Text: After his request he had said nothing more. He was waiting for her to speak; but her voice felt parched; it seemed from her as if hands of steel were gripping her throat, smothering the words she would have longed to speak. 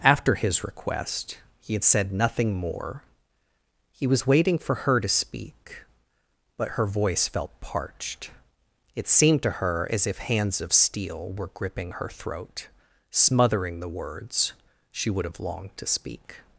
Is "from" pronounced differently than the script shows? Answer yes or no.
yes